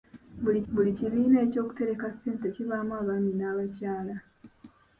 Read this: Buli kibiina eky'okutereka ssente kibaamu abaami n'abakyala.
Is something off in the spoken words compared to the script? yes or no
yes